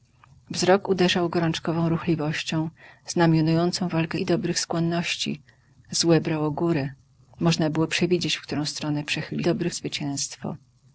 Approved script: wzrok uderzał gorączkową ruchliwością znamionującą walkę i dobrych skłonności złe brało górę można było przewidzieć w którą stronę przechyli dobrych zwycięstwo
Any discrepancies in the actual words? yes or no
no